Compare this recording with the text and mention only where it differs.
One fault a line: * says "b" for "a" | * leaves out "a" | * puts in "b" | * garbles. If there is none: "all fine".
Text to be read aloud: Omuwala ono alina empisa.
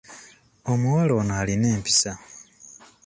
all fine